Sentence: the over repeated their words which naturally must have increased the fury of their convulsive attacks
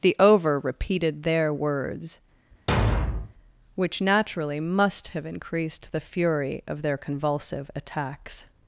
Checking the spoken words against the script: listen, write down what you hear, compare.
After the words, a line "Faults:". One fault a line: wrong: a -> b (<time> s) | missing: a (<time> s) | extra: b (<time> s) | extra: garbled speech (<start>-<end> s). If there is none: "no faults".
the over repeated their words which naturally must have increased the fury of their convulsive attacks
Faults:
no faults